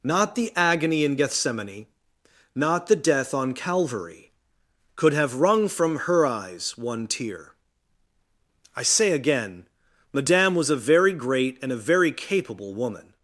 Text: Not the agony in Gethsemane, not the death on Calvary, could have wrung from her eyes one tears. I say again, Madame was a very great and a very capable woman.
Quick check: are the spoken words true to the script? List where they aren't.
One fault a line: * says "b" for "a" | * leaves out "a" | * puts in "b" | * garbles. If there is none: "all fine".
* says "tear" for "tears"